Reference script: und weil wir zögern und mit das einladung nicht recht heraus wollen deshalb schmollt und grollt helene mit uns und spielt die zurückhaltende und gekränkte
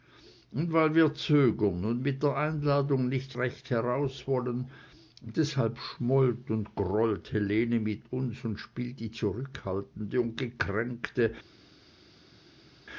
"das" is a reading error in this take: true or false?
true